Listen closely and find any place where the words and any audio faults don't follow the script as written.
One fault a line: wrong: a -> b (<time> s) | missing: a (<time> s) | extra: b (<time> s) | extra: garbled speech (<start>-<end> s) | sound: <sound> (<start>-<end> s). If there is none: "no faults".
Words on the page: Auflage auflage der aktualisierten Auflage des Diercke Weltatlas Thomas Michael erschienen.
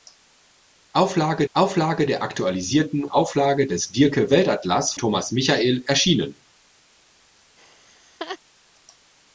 sound: laugh (7.6-8.4 s)